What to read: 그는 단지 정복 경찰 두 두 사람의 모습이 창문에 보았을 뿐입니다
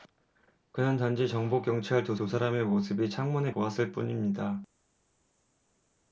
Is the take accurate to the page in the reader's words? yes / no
yes